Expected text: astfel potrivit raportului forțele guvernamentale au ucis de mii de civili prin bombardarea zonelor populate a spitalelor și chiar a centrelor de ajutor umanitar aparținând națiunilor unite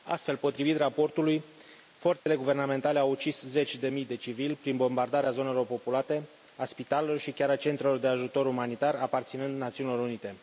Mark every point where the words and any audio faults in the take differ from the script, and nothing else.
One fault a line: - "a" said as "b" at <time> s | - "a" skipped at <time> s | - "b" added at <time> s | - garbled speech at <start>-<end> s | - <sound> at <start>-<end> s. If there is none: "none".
- dropout at 2.2-2.3 s
- "zeci" added at 3.4 s